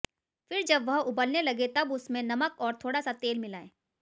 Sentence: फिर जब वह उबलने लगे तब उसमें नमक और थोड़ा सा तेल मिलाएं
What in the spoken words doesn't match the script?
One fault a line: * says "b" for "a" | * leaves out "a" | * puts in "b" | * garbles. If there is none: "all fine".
all fine